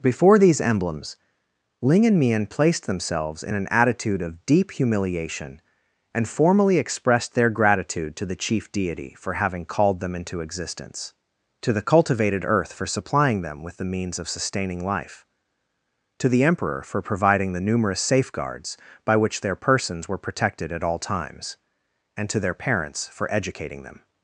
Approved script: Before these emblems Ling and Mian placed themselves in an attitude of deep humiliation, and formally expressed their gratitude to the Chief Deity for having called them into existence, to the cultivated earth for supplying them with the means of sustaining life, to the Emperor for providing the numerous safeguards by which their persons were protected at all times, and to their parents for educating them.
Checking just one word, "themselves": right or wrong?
right